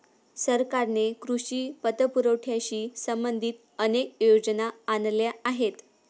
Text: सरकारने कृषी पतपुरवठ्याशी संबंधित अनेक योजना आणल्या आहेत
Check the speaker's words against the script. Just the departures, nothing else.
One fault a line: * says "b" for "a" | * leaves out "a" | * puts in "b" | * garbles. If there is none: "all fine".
all fine